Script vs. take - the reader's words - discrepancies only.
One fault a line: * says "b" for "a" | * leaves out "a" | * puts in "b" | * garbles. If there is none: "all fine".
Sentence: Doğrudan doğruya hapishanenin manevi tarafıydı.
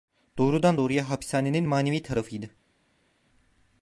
all fine